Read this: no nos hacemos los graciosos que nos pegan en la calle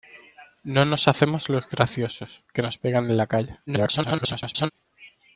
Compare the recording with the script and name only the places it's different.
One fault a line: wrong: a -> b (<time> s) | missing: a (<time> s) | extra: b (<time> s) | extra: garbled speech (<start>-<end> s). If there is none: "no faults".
extra: garbled speech (3.7-4.7 s)